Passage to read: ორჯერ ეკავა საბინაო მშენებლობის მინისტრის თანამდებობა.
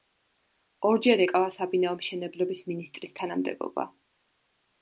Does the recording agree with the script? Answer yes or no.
yes